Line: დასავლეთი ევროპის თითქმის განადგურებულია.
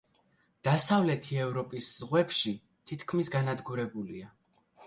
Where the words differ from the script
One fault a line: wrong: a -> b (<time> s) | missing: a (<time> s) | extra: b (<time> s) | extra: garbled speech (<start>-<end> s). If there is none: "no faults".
extra: ზღვებში (2.0 s)